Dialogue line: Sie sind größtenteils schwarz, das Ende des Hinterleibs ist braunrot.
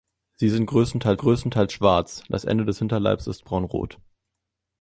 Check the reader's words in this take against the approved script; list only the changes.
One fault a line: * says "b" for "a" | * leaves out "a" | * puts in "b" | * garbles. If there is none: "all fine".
* puts in "größtenteils"